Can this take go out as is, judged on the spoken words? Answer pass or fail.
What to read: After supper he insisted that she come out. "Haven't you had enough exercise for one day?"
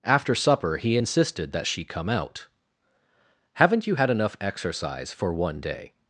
pass